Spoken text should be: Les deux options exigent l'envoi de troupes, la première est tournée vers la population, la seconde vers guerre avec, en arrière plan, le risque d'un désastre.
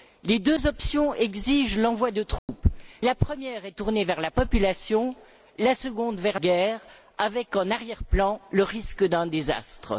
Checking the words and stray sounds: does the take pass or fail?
fail